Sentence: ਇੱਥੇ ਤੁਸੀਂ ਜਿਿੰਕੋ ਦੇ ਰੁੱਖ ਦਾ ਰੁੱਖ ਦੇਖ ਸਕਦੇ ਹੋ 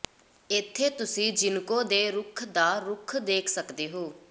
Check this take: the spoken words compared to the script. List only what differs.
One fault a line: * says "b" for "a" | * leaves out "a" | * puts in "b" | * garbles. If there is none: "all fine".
all fine